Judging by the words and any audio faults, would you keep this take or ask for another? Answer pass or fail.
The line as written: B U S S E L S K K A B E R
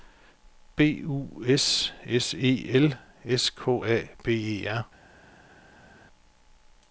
fail